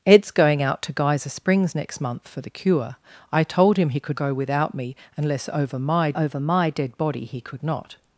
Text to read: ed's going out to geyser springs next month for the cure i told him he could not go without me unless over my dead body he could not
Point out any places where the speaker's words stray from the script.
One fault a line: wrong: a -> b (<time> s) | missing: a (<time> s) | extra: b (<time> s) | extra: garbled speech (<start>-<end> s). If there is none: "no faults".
missing: not (4.2 s)
extra: over my (6.1 s)